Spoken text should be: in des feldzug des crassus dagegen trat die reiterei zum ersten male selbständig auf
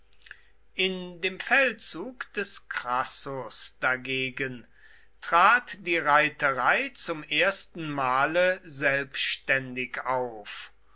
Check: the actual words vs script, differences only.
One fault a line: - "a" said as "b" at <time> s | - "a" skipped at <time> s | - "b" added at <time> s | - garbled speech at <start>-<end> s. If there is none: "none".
- "des" said as "dem" at 1.2 s